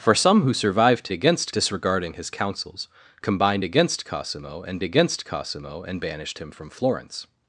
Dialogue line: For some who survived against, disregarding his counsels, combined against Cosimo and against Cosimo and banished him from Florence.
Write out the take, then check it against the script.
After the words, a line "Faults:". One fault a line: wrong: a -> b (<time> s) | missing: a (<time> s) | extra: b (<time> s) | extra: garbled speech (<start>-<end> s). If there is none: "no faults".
For some who survived against, disregarding his counsels, combined against Cosimo and against Cosimo and banished him from Florence.
Faults:
no faults